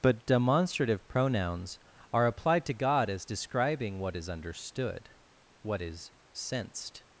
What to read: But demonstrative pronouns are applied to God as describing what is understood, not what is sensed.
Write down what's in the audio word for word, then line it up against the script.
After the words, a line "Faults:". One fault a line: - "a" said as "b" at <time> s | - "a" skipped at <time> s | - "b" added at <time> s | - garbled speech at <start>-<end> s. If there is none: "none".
But demonstrative pronouns are applied to God as describing what is understood, what is sensed.
Faults:
- "not" skipped at 5.1 s